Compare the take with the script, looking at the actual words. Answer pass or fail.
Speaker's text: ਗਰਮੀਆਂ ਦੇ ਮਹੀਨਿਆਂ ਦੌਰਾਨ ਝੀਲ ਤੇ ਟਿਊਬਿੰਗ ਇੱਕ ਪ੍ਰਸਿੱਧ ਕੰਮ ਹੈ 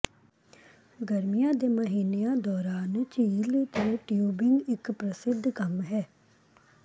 pass